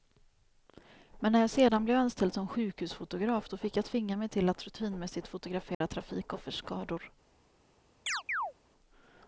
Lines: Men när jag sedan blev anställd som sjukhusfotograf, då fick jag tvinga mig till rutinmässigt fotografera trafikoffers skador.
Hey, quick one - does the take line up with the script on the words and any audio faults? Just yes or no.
no